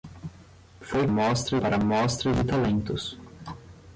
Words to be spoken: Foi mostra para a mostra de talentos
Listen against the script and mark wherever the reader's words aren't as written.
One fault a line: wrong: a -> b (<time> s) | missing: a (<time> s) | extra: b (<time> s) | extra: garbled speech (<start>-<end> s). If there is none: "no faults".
no faults